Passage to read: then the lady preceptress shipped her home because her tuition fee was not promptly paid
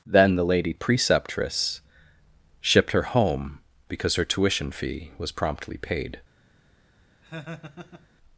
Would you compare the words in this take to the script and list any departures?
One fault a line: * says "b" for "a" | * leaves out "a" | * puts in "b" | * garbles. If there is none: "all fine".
* leaves out "not"